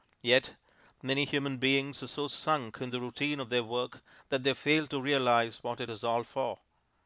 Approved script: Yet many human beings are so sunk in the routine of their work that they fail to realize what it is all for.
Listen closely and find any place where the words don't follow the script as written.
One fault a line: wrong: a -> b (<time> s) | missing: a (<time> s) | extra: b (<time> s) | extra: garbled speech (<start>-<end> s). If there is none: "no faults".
no faults